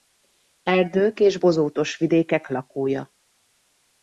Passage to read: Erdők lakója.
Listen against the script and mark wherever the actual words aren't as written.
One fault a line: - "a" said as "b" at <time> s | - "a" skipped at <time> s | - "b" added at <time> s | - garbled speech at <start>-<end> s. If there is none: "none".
- "és bozótos vidékek" added at 1.2 s